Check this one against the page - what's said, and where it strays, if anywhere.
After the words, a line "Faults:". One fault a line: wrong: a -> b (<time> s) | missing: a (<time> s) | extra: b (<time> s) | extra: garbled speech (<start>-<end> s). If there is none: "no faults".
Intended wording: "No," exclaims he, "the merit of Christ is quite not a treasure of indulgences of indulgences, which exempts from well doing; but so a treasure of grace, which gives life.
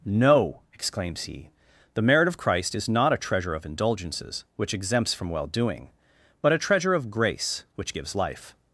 "No," exclaims he, "the merit of Christ is not a treasure of indulgences, which exempts from well doing; but a treasure of grace, which gives life.
Faults:
missing: quite (2.9 s)
missing: of indulgences (4.5 s)
missing: so (6.5 s)